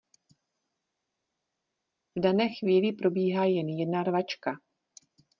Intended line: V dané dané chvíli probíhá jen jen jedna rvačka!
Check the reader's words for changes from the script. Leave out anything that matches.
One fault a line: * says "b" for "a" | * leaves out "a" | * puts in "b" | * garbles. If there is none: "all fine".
* leaves out "dané"
* leaves out "jen"